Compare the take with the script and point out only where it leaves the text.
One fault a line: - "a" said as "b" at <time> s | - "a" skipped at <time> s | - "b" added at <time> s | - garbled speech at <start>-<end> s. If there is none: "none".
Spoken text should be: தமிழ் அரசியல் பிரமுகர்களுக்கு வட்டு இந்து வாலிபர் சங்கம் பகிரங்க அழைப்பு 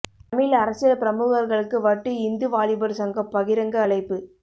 none